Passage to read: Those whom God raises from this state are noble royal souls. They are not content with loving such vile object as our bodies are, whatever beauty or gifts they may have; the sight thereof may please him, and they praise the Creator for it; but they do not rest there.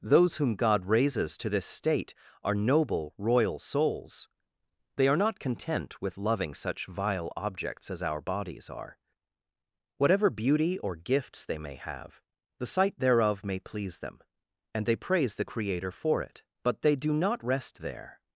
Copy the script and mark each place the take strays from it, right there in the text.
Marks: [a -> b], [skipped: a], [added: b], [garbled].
Those whom God raises [from -> to] this state are noble royal souls. They are not content with loving such vile [object -> objects] as our bodies are, whatever beauty or gifts they may have; the sight thereof may please [him, -> them] and they praise the Creator for it; but they do not rest there.